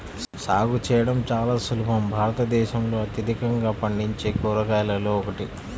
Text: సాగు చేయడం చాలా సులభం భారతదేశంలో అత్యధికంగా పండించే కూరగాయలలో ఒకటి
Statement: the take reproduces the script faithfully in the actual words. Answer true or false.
true